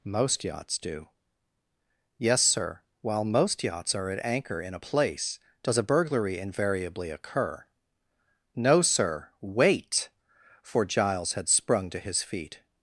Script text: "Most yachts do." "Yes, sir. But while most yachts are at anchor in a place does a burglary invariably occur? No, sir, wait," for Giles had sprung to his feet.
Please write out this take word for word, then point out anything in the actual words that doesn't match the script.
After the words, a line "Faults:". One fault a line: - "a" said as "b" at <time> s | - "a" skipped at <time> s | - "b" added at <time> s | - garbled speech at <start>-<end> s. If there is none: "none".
"Most yachts do." "Yes, sir. while most yachts are at anchor in a place does a burglary invariably occur? No, sir, wait," for Giles had sprung to his feet.
Faults:
- "But" skipped at 2.8 s